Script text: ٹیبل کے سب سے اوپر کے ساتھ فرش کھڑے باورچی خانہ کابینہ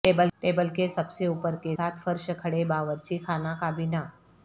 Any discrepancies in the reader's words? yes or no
no